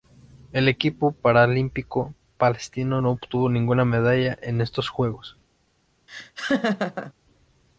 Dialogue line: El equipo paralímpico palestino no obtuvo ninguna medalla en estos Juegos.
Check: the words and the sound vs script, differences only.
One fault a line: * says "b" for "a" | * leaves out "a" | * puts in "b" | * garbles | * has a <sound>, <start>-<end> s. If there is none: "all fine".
* has a laugh, 6.1-7.1 s